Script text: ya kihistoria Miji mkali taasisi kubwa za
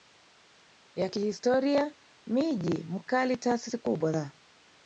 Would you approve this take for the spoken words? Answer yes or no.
yes